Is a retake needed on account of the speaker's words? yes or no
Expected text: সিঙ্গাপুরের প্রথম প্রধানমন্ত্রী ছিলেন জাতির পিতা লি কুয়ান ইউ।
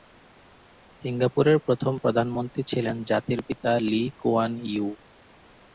no